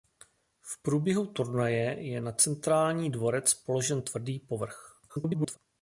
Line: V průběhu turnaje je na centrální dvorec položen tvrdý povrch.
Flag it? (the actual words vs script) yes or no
yes